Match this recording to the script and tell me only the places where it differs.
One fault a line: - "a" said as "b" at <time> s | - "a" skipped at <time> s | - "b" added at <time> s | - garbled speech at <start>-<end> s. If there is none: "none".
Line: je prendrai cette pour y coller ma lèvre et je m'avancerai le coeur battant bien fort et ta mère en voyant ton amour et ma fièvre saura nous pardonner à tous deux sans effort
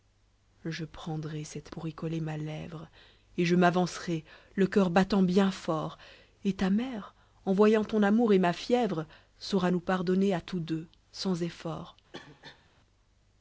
none